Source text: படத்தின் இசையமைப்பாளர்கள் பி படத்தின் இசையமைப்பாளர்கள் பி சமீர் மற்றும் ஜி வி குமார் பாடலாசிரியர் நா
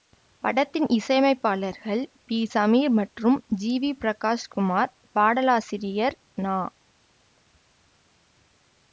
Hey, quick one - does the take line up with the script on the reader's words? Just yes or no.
no